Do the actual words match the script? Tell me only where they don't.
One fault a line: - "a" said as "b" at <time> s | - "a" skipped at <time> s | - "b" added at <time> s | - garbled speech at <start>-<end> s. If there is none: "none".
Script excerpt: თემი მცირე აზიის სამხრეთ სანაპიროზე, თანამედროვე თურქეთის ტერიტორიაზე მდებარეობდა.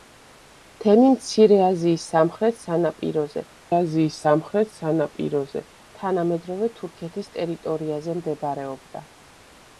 - "აზიის სამხრეთ სანაპიროზე" added at 3.8 s